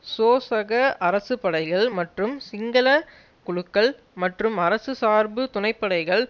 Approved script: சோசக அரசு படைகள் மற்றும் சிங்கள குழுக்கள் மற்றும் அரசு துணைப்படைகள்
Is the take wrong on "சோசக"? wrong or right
right